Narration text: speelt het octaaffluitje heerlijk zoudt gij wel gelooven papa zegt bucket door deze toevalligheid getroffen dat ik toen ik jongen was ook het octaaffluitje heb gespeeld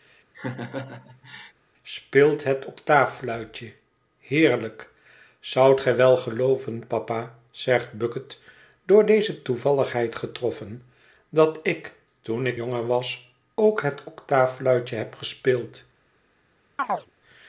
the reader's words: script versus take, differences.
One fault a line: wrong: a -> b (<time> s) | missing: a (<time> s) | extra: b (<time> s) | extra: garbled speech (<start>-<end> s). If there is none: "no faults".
no faults